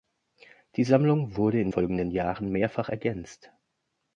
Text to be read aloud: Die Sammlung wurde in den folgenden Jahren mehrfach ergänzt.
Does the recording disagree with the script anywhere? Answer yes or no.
yes